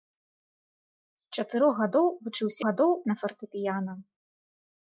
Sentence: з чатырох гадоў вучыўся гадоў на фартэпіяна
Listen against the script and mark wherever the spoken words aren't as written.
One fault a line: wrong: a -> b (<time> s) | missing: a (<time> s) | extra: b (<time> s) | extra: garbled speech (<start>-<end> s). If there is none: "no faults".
no faults